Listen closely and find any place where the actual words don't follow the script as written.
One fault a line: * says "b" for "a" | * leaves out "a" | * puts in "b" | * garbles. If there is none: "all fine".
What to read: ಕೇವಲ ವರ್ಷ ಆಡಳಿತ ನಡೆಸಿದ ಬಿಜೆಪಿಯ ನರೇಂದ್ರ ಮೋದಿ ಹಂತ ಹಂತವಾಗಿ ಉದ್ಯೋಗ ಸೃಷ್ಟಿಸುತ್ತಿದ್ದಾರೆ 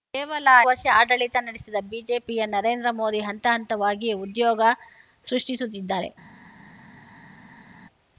all fine